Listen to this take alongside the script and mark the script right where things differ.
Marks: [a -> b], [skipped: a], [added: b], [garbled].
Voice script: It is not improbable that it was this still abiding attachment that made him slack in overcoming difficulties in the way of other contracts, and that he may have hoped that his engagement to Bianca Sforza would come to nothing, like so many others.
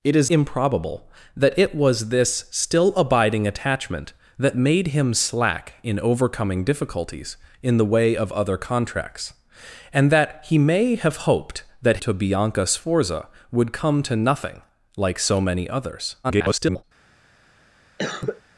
It is [skipped: not] improbable that it was this still abiding attachment that made him slack in overcoming difficulties in the way of other contracts, and that he may have hoped that [skipped: his engagement] to Bianca Sforza would come to nothing, like so many others. [garbled]